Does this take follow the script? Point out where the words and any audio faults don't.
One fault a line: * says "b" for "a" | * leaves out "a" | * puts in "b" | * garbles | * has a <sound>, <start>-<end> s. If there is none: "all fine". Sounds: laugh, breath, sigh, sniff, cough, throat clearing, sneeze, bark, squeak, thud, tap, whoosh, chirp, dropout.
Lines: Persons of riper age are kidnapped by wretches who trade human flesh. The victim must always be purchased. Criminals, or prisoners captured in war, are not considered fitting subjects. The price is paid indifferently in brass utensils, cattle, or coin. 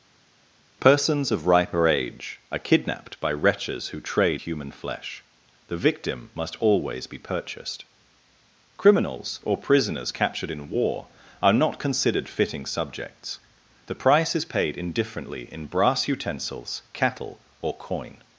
all fine